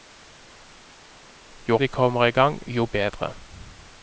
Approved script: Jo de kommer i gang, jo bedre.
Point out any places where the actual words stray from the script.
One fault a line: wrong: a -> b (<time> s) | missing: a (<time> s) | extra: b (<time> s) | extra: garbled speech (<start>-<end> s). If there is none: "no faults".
no faults